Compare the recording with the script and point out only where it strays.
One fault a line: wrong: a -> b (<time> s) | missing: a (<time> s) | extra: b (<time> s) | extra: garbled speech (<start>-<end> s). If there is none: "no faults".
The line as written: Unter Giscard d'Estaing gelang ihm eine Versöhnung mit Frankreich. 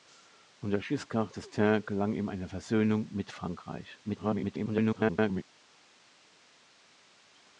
extra: garbled speech (4.0-5.4 s)